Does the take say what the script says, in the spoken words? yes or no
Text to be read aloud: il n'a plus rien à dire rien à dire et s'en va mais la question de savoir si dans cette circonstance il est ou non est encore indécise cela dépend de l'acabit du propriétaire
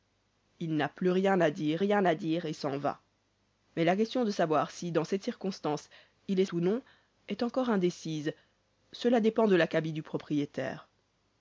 yes